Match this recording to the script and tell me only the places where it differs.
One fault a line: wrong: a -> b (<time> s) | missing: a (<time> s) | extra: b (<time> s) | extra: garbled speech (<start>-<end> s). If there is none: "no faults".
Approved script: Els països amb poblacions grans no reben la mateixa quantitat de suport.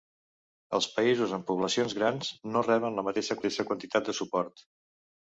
extra: mateixa (3.4 s)